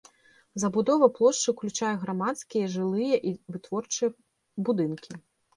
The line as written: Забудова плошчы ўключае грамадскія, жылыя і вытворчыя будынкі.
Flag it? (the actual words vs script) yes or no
no